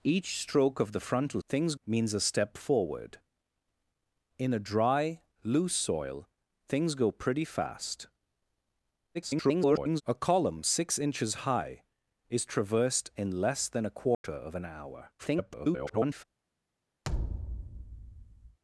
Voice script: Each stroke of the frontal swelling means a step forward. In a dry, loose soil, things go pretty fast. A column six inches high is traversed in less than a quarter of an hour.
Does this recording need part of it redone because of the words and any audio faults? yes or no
yes